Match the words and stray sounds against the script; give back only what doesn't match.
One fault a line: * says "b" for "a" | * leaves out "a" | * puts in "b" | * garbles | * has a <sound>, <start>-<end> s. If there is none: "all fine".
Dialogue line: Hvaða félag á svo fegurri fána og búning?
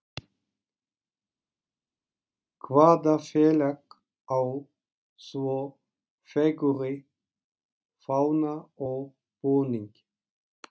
all fine